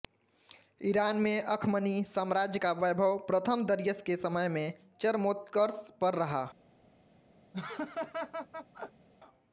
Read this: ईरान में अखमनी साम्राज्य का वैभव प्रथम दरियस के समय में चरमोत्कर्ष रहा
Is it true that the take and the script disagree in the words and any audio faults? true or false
true